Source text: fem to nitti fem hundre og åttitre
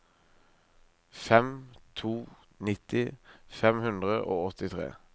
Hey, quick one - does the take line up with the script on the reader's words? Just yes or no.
yes